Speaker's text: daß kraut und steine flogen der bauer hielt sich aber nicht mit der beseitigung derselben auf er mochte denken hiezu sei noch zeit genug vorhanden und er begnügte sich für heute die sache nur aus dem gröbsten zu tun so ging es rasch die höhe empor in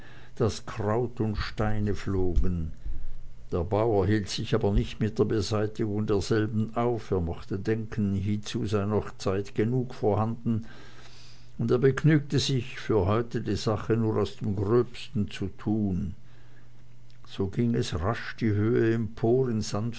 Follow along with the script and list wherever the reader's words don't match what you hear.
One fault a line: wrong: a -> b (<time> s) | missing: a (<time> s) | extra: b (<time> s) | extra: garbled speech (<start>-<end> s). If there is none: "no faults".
no faults